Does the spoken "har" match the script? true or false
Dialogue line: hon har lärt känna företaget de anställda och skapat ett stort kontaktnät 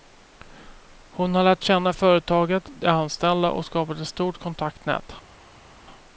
true